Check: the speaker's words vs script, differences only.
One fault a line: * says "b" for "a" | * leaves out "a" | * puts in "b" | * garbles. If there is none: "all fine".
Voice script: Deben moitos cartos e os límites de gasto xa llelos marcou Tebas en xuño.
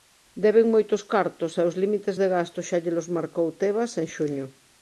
all fine